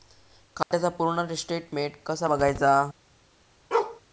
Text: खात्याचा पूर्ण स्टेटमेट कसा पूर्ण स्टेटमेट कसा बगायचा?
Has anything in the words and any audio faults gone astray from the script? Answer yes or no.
yes